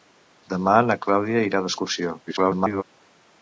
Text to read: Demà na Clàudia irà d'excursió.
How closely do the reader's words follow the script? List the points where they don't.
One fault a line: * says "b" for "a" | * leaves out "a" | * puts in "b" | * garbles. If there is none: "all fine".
* garbles